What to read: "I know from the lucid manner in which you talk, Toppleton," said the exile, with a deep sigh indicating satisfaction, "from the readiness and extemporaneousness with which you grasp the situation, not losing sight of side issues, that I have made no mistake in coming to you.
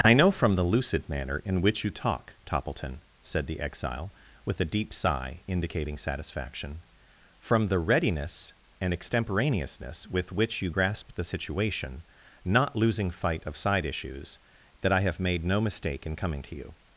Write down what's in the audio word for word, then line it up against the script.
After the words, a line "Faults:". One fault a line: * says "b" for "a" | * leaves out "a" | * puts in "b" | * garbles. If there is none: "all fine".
"I know from the lucid manner in which you talk, Toppleton," said the exile, with a deep sigh indicating satisfaction, "from the readiness and extemporaneousness with which you grasp the situation, not losing fight of side issues, that I have made no mistake in coming to you.
Faults:
* says "fight" for "sight"